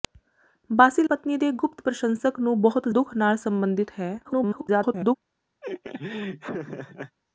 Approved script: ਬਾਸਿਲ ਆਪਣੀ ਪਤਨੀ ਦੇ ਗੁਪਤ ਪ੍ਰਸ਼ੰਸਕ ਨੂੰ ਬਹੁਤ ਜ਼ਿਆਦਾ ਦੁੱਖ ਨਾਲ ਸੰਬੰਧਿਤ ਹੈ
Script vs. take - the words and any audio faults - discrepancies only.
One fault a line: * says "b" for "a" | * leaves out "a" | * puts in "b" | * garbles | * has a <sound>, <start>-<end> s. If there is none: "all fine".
* leaves out "ਆਪਣੀ"
* leaves out "ਜ਼ਿਆਦਾ"
* garbles
* has a laugh, 5.6-7.2 s